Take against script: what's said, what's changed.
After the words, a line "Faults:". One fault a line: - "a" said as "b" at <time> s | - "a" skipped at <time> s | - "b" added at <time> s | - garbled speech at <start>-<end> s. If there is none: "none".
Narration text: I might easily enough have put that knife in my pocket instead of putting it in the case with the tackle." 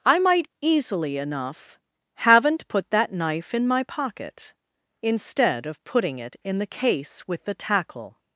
I might easily enough haven't put that knife in my pocket instead of putting it in the case with the tackle."
Faults:
- "have" said as "haven't" at 2.1 s